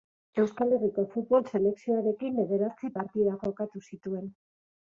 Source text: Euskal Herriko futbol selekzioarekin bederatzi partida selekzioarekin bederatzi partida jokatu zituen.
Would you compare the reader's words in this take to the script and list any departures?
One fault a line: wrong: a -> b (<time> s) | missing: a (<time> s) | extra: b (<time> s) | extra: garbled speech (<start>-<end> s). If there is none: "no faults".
missing: selekzioarekin bederatzi partida (3.4 s)